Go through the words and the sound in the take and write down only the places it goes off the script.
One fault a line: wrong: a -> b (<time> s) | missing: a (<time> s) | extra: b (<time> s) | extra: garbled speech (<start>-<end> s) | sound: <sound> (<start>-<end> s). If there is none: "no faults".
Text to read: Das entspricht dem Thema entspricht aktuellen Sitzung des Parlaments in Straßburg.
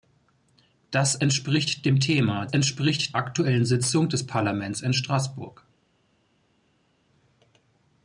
no faults